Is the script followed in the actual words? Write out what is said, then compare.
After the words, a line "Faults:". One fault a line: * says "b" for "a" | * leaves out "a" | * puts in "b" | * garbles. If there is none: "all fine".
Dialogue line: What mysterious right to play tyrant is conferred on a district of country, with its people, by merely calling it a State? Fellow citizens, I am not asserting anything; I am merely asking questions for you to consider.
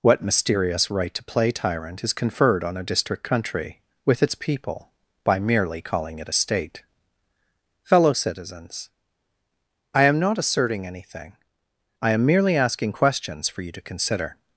What mysterious right to play tyrant is conferred on a district country, with its people, by merely calling it a State? Fellow citizens, I am not asserting anything; I am merely asking questions for you to consider.
Faults:
* leaves out "of"